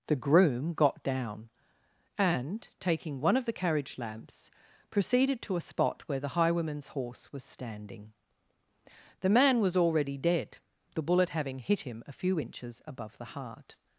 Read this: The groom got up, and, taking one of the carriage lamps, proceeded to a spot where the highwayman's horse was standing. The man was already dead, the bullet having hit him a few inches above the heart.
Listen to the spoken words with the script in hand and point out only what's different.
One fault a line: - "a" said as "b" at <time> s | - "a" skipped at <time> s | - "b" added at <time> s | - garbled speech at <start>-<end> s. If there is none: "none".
- "up" said as "down" at 1.0 s